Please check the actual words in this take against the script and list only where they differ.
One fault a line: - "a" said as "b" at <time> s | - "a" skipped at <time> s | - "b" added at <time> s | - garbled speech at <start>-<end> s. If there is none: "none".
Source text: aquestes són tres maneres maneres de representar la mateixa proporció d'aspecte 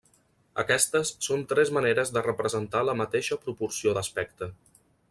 - "maneres" skipped at 2.1 s